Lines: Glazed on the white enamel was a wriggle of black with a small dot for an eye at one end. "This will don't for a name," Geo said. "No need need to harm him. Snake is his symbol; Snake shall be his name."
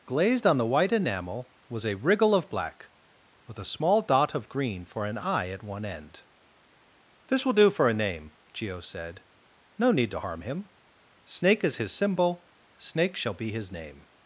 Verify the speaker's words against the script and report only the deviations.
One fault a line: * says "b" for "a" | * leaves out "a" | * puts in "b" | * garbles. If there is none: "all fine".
* puts in "of green"
* says "do" for "don't"
* leaves out "need"